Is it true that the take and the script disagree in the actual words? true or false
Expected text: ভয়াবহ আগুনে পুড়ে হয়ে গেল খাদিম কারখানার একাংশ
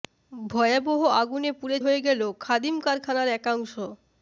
false